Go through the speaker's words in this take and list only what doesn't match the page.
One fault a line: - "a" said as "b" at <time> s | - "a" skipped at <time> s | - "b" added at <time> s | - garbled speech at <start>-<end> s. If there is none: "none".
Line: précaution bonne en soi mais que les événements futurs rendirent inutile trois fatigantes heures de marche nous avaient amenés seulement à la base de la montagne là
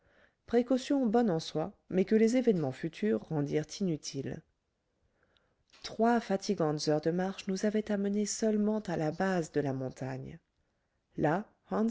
none